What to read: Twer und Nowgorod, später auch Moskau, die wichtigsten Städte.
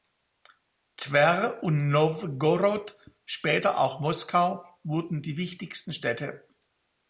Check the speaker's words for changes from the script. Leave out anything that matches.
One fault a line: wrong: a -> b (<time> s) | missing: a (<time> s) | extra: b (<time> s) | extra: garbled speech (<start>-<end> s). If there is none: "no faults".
extra: wurden (4.8 s)